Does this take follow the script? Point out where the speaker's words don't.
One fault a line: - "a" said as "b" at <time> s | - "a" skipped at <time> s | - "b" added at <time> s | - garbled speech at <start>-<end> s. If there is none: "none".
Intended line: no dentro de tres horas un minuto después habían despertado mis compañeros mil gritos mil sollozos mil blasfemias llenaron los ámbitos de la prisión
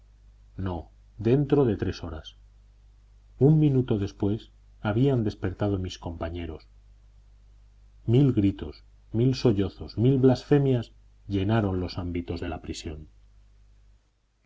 none